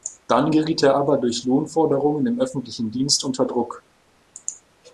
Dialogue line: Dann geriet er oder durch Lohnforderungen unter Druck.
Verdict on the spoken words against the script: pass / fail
fail